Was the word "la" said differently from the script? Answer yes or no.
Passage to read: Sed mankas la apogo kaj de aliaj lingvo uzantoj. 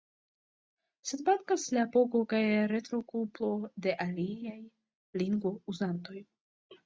no